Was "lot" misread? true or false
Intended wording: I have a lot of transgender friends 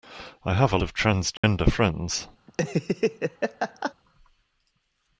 true